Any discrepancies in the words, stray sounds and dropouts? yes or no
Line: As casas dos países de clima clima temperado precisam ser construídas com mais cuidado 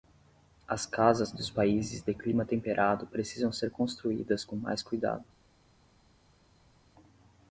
yes